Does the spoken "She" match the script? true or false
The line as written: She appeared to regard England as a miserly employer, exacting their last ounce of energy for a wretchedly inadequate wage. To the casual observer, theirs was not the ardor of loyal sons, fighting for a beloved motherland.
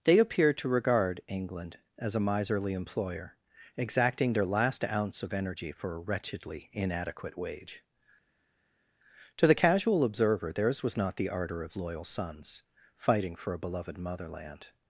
false